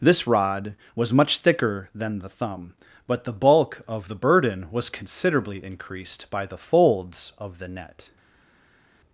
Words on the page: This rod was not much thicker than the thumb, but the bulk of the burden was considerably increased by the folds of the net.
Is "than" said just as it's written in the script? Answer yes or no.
yes